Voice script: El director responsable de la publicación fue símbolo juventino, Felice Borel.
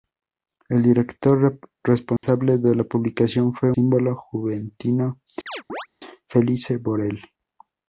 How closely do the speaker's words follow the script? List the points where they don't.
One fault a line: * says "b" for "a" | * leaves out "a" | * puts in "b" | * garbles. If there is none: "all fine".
all fine